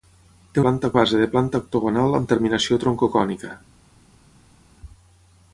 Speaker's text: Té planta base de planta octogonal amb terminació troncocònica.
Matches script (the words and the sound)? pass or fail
pass